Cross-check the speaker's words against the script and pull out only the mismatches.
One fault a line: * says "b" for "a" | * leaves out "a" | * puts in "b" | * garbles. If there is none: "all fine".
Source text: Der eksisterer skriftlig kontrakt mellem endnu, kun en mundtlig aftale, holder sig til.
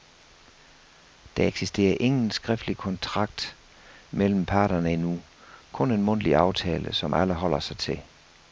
* puts in "ingen"
* puts in "parterne"
* puts in "som alle"